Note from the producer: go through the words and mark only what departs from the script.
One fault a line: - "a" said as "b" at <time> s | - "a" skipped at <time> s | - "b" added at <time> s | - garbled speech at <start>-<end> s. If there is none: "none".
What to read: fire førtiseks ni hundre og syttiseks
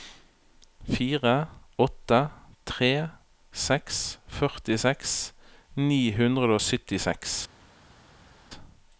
- "åtte tre seks" added at 1.9 s